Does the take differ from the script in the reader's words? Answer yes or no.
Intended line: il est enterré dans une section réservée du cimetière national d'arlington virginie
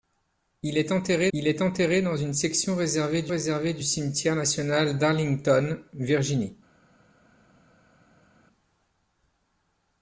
yes